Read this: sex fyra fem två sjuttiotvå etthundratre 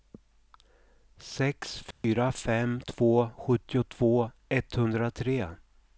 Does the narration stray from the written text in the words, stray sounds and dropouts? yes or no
yes